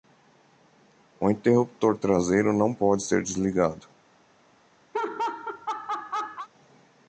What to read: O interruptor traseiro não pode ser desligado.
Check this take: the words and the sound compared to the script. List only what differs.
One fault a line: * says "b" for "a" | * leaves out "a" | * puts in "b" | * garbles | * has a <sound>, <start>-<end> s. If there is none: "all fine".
* has a laugh, 4.9-6.5 s